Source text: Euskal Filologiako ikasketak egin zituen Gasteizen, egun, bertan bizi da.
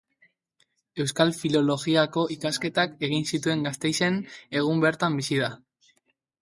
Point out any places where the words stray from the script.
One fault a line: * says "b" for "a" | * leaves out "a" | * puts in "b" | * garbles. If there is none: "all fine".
all fine